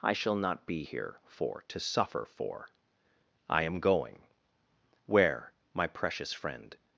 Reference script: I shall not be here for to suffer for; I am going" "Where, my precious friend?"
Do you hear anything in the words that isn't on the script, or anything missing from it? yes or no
no